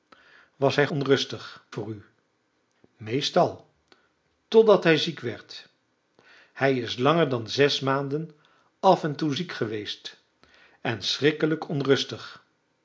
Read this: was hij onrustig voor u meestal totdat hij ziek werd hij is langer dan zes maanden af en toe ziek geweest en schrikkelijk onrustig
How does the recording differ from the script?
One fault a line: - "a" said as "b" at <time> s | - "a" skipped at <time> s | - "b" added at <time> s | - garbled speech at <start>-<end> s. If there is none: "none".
none